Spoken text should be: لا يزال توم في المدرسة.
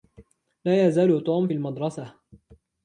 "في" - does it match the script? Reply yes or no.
no